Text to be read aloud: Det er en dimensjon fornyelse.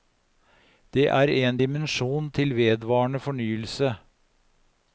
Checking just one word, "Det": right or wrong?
right